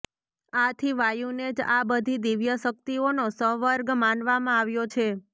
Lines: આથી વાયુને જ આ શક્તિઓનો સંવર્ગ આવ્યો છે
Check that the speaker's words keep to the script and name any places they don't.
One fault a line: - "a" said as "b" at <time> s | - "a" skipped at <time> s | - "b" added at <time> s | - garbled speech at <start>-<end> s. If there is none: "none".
- "બધી દિવ્ય" added at 1.9 s
- "માનવામાં" added at 4.0 s